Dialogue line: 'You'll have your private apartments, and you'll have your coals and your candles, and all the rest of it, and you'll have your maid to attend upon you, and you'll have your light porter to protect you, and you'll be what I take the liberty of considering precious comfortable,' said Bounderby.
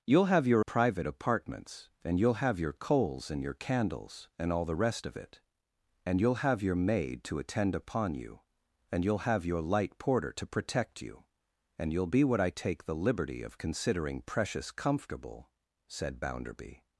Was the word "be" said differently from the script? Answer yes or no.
no